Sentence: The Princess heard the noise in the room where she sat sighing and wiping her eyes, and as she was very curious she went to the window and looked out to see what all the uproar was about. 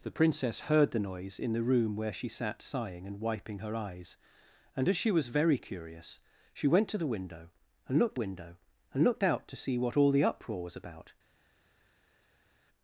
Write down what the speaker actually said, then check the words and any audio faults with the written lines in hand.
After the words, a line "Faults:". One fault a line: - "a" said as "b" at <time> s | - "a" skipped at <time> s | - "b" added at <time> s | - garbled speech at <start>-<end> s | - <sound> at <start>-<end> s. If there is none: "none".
The Princess heard the noise in the room where she sat sighing and wiping her eyes, and as she was very curious she went to the window and looked window and looked out to see what all the uproar was about.
Faults:
- "window and looked" added at 8.2 s